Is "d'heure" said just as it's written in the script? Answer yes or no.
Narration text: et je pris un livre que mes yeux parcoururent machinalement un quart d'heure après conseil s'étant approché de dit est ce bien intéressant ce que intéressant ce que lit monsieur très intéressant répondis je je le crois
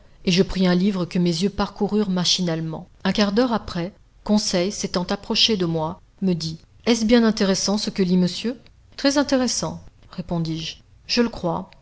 yes